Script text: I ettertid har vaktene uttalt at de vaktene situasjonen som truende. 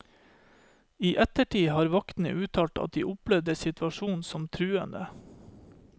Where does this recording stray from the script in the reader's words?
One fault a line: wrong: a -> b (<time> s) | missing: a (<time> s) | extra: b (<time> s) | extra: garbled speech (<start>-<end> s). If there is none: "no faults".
wrong: vaktene -> opplevde (3.1 s)